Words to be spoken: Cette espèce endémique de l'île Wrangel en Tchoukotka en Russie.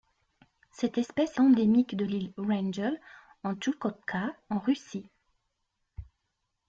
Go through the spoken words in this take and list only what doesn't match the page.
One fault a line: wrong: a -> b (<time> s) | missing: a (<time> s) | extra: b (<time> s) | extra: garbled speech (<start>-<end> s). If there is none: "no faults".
no faults